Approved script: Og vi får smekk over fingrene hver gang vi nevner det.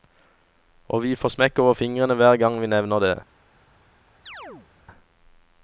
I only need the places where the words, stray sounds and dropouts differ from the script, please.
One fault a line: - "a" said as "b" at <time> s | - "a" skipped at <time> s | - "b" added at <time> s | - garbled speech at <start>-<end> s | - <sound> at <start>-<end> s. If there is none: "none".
- chirp at 4.3-4.7 s